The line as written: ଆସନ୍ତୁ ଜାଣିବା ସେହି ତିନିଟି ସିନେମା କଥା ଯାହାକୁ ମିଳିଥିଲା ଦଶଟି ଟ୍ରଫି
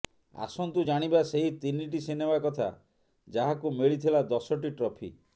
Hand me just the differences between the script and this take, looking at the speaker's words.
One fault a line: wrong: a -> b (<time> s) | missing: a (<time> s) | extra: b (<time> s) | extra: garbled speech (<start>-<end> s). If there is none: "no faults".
no faults